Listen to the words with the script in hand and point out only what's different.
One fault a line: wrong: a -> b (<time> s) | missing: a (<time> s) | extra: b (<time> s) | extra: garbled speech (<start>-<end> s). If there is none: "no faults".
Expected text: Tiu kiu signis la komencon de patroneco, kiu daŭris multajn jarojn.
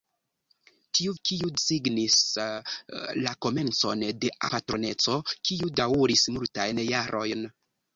no faults